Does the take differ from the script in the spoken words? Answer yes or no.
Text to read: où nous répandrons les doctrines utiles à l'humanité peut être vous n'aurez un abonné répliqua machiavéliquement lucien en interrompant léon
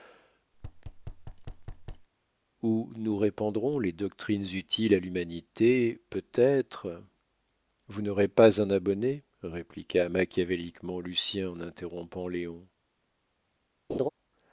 yes